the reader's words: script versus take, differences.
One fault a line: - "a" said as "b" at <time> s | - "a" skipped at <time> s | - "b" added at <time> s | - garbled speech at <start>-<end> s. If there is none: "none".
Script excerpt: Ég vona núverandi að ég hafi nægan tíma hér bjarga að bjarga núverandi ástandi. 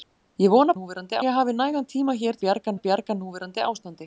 none